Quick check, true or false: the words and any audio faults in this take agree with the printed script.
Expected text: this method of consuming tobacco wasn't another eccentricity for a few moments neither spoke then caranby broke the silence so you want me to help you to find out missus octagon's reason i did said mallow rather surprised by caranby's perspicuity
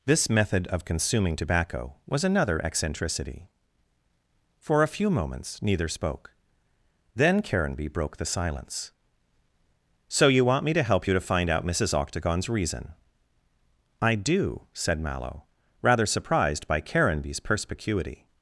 false